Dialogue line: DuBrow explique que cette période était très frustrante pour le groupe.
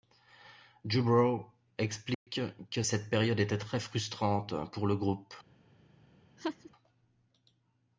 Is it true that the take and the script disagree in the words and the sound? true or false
true